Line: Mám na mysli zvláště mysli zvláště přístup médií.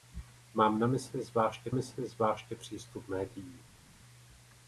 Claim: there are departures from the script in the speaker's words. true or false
false